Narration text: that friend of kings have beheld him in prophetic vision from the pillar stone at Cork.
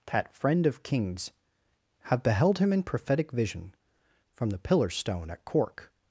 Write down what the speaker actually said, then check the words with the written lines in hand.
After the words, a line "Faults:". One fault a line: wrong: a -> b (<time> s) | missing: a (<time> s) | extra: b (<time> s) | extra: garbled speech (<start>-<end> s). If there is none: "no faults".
that friend of kings have beheld him in prophetic vision from the pillar stone at Cork.
Faults:
no faults